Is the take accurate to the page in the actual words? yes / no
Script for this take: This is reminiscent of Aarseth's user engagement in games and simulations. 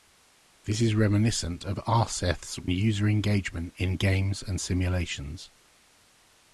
yes